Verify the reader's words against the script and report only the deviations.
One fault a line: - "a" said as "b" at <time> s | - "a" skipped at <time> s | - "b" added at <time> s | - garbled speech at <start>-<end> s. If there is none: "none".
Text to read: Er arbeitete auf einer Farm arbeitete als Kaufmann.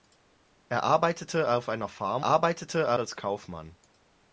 none